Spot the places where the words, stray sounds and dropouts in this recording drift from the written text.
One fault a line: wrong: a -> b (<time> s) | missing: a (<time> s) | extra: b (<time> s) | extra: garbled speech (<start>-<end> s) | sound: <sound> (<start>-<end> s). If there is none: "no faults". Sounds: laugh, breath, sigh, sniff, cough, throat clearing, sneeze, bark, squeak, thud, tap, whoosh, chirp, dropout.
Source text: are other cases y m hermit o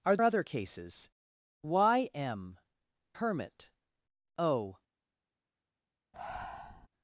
sound: breath (6.1-6.9 s)